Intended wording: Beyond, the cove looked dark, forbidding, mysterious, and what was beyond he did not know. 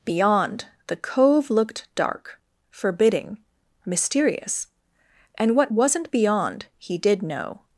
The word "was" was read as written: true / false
false